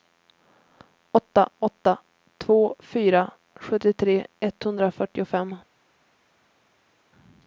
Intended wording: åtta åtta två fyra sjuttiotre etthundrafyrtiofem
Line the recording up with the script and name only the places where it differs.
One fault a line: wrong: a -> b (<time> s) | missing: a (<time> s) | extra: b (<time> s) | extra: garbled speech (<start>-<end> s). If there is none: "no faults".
no faults